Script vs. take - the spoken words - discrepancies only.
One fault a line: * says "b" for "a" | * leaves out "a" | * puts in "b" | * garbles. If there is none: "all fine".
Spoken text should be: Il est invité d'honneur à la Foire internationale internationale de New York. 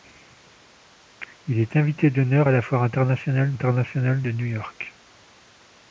all fine